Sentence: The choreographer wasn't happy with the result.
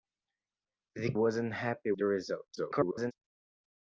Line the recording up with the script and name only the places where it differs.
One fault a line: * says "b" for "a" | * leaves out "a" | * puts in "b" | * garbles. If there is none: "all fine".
* leaves out "choreographer"
* leaves out "with"
* garbles